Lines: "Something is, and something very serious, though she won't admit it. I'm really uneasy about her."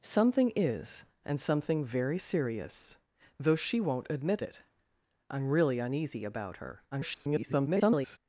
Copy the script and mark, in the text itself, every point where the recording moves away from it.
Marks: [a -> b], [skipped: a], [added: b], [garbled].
"Something is, and something very serious, though she won't admit it. I'm really uneasy about her." [garbled]